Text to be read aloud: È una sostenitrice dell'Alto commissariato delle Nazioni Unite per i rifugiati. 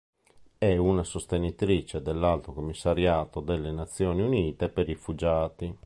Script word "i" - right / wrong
wrong